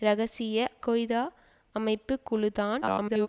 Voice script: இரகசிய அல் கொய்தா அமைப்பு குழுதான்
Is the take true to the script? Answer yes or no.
no